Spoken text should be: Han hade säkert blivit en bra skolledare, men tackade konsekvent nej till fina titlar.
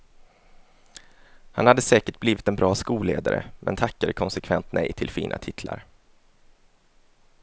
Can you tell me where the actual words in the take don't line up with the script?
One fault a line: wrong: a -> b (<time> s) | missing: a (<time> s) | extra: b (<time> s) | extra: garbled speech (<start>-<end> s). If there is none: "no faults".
no faults